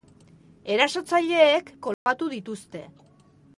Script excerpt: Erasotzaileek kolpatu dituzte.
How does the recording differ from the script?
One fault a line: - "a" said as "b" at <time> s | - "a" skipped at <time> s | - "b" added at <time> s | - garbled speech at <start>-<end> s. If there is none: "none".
none